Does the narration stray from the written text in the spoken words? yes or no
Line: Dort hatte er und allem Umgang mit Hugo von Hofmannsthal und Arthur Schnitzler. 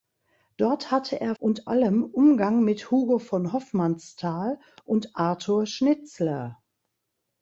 no